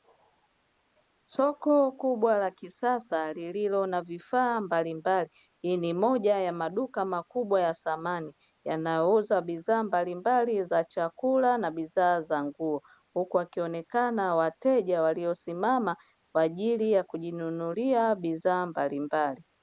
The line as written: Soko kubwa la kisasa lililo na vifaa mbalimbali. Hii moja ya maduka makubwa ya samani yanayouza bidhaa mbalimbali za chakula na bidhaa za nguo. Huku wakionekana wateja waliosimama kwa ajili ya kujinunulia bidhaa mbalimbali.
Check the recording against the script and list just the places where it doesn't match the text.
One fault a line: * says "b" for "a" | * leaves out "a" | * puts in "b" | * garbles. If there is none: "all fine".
* puts in "ni"